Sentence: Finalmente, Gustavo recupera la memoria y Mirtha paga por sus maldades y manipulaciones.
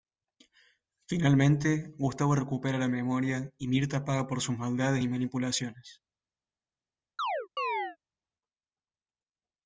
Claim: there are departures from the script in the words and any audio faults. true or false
true